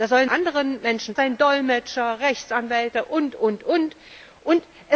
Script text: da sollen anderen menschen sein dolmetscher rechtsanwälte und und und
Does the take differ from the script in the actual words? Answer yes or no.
no